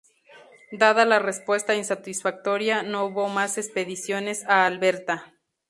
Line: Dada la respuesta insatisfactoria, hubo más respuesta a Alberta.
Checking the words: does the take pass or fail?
fail